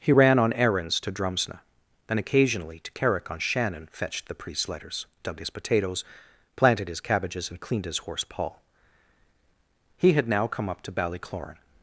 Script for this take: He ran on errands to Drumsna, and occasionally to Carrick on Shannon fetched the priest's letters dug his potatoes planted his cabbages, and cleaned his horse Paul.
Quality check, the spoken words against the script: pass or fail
fail